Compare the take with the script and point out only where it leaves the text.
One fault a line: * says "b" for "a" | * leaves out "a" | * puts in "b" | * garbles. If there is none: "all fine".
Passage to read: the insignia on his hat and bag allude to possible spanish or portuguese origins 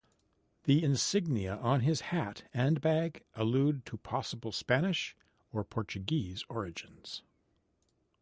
all fine